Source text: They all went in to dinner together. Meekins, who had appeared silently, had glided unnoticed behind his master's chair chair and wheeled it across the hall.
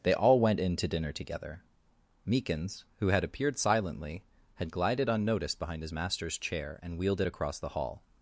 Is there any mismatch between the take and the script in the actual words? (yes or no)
yes